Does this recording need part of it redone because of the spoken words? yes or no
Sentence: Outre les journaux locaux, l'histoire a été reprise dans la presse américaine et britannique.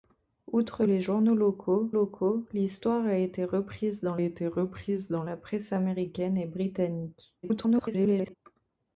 yes